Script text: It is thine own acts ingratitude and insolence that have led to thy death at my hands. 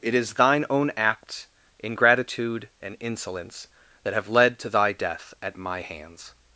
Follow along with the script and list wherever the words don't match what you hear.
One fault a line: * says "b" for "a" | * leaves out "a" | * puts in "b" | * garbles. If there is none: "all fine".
all fine